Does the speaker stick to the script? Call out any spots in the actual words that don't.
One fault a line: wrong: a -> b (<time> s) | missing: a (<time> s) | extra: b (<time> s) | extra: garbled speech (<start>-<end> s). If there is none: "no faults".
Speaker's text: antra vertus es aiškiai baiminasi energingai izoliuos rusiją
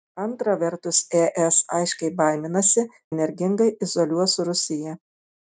no faults